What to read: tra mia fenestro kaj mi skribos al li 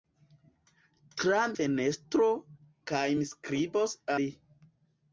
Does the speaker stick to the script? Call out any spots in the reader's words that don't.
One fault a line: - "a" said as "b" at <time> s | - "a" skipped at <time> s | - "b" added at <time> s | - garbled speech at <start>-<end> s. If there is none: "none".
- "mia" skipped at 1.4 s
- "al" skipped at 4.0 s